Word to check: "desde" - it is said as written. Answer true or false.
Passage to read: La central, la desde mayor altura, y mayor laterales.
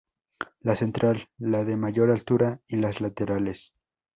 false